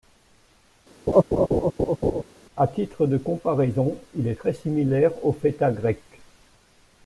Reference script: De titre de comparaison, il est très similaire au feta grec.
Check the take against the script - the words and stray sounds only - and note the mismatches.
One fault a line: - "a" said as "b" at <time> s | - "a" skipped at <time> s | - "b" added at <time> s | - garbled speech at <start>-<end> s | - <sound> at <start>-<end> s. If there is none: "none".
- laugh at 1.1-2.2 s
- "De" said as "À" at 2.6 s